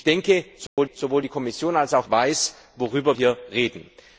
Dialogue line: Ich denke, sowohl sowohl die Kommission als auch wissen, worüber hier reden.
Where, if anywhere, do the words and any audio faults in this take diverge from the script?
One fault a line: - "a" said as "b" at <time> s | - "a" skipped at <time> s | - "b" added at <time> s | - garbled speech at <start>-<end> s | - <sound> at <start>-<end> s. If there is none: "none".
- dropout at 0.7-0.8 s